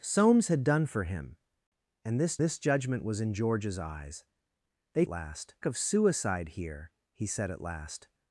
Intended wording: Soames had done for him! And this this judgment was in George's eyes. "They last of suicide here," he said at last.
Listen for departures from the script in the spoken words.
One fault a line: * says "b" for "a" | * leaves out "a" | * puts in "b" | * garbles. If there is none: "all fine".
all fine